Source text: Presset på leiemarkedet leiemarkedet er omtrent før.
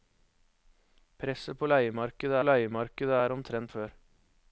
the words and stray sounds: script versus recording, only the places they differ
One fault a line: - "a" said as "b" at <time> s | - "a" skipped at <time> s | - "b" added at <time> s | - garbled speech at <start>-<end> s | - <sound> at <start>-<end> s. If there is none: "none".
none